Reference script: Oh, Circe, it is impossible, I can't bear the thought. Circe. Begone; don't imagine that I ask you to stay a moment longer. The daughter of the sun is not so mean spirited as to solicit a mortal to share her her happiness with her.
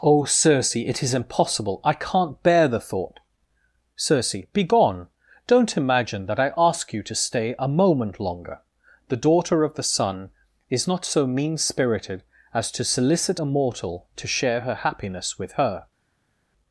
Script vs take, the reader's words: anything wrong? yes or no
yes